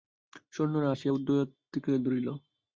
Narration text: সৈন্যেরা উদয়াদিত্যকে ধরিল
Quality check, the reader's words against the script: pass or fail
fail